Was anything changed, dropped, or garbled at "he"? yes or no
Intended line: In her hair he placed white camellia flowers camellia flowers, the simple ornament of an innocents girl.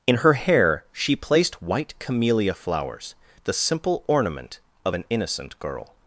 yes